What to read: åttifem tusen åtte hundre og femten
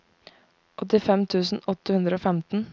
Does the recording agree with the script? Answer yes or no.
yes